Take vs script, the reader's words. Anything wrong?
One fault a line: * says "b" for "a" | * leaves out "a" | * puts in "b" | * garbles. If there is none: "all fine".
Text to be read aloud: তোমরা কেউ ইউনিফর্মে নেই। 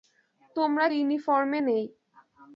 * leaves out "কেউ"